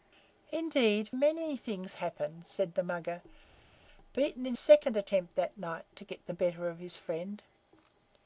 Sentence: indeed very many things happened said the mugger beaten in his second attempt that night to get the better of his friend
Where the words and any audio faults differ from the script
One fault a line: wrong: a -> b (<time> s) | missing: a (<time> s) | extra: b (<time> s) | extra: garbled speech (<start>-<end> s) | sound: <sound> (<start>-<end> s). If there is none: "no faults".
missing: very (1.1 s)
missing: his (4.6 s)